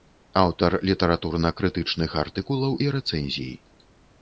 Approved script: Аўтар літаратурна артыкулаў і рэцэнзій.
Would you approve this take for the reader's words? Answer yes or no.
no